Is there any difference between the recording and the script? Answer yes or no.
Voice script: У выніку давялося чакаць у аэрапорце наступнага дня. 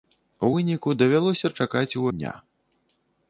yes